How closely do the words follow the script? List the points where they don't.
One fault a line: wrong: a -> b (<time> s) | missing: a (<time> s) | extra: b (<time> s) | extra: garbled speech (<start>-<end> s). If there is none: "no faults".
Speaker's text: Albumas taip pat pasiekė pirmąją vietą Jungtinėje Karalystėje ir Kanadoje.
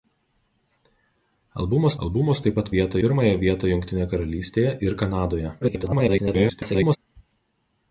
extra: albumas (2.1 s)
wrong: pasiekė -> vietą (2.7 s)
extra: garbled speech (5.6-7.0 s)